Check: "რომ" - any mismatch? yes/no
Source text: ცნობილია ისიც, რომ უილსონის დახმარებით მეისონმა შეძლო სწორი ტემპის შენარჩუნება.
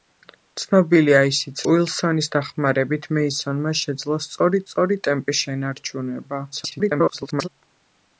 yes